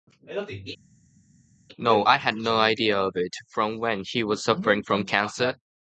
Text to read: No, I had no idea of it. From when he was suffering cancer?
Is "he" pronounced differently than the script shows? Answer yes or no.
no